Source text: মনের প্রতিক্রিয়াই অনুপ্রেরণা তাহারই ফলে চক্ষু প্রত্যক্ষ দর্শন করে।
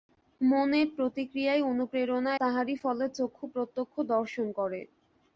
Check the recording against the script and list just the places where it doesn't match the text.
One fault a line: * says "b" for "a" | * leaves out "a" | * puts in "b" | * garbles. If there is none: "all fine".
all fine